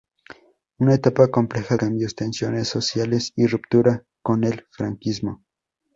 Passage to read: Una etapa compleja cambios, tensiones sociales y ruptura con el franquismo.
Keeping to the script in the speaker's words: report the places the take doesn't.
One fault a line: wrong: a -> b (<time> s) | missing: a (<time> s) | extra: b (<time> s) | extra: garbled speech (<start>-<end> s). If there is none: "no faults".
no faults